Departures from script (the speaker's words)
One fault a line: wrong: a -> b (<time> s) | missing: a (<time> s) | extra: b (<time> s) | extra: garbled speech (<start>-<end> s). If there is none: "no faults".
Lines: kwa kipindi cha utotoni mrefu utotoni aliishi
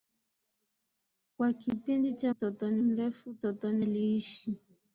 no faults